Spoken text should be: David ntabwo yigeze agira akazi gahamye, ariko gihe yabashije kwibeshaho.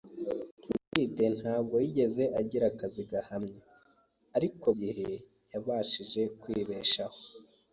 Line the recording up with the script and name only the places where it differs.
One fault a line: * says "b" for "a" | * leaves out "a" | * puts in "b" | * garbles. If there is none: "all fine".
all fine